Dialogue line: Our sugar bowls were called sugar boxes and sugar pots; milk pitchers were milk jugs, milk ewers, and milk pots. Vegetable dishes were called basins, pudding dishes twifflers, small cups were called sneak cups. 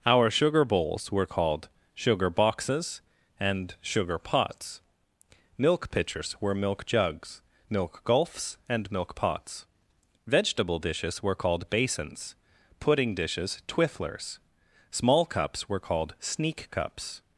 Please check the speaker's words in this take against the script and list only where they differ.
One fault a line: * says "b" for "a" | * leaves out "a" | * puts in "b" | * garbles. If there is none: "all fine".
* says "gulfs" for "ewers"